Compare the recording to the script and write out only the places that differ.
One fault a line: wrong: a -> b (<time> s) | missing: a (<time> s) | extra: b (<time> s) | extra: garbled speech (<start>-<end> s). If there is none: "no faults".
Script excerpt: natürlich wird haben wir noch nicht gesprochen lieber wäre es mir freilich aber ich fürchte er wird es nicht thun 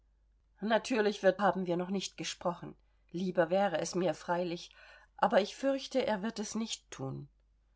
no faults